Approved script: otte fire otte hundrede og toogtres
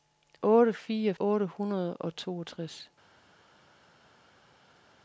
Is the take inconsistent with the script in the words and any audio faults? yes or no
no